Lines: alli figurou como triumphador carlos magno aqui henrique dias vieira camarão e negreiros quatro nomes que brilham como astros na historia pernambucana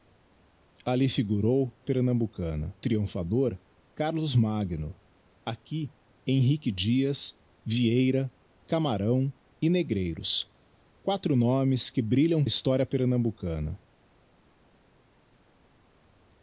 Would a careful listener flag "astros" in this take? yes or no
yes